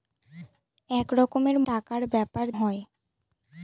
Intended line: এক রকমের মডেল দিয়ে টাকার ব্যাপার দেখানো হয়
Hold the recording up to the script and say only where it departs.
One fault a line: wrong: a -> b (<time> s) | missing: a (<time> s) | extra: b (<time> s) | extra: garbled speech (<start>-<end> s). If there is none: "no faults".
missing: মডেল দিয়ে (1.6 s)
missing: দেখানো (2.4 s)